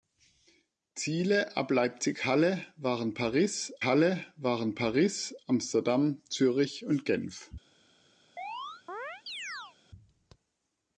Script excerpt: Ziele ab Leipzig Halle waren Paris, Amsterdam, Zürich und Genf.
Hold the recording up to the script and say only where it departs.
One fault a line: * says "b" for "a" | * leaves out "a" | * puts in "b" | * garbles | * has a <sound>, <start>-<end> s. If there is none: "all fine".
* puts in "Halle waren Paris"
* has a chirp, 8.4-9.8 s